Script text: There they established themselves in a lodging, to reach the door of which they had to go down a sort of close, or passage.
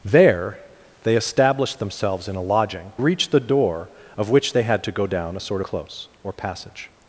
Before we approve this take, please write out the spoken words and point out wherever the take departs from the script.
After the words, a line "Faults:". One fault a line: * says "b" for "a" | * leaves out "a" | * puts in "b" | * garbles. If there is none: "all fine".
There they established themselves in a lodging, reach the door of which they had to go down a sort close, or passage.
Faults:
* leaves out "to"
* leaves out "of"